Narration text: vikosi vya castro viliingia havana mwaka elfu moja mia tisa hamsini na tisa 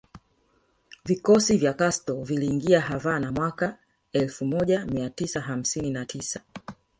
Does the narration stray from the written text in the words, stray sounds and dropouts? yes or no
no